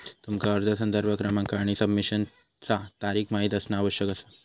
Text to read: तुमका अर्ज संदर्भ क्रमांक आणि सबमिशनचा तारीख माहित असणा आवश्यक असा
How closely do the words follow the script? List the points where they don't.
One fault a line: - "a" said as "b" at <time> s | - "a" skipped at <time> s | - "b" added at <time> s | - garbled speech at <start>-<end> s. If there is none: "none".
none